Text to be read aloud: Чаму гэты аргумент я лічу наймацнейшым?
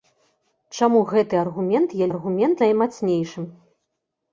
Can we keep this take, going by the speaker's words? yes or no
no